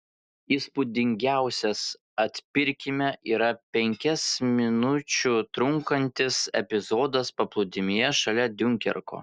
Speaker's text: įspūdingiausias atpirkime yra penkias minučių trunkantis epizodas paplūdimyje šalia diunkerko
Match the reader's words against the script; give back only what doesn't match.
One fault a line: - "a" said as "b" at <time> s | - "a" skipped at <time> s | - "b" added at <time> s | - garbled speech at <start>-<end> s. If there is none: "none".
none